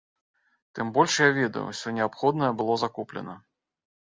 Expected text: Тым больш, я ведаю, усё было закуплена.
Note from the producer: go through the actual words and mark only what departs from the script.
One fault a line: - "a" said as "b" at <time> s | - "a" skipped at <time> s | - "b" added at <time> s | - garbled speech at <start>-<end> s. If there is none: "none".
- "неабходнае" added at 2.0 s